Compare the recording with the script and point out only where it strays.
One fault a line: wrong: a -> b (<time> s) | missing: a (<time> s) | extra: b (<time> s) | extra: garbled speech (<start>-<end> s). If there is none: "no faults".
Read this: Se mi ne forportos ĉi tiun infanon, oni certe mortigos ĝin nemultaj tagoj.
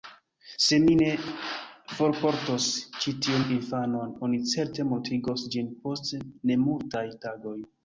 extra: post (5.9 s)